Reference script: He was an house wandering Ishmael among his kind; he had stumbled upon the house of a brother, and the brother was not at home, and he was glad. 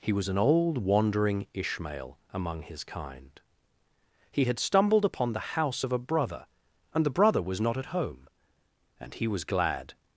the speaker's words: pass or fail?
fail